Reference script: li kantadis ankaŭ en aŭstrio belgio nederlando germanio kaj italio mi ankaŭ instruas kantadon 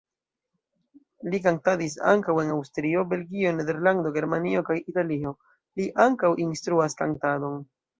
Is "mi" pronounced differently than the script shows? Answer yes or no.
yes